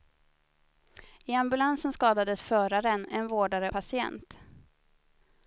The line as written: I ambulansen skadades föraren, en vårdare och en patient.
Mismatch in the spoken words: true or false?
true